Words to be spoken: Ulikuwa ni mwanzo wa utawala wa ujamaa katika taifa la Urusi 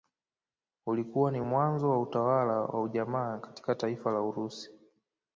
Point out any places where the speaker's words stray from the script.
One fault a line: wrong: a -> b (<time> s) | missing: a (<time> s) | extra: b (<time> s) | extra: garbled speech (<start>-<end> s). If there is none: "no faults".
no faults